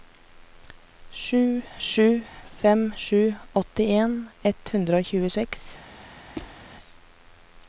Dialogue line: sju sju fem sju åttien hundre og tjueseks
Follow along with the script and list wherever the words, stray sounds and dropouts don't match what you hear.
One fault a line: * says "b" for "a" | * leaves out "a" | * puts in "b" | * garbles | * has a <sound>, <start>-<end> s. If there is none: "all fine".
* puts in "ett"
* has a squeak, 6.4-6.6 s